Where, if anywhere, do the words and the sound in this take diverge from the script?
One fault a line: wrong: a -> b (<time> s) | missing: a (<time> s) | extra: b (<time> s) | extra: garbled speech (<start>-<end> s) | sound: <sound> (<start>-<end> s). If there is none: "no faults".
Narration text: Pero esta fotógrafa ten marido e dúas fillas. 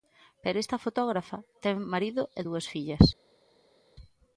no faults